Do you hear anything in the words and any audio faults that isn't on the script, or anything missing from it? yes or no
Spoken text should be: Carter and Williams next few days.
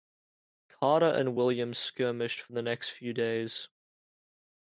yes